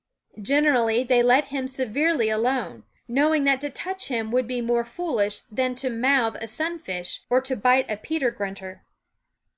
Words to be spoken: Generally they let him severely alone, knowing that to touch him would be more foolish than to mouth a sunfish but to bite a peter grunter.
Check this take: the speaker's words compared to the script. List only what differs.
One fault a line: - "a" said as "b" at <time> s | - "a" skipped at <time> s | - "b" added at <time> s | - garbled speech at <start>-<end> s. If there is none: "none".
- "but" said as "or" at 7.3 s